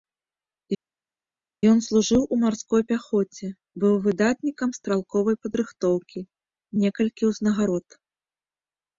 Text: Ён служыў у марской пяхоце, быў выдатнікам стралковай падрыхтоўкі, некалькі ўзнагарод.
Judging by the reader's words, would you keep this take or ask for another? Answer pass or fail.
pass